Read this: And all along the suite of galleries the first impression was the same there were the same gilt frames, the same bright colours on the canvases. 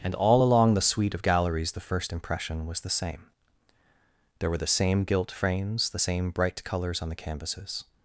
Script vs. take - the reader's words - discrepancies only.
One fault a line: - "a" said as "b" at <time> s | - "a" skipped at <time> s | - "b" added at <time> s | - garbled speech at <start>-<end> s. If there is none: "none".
none